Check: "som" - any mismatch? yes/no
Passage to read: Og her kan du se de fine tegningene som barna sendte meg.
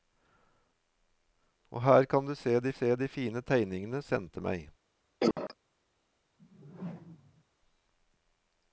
yes